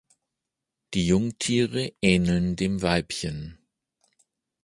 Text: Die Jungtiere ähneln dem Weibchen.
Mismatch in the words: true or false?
false